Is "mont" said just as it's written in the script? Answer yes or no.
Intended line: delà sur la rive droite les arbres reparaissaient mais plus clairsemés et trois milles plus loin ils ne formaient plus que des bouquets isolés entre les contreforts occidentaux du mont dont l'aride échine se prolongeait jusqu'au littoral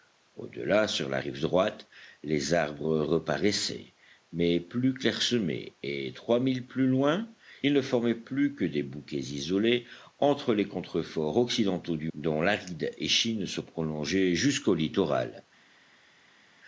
no